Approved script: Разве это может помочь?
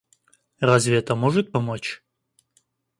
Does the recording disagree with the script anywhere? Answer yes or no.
no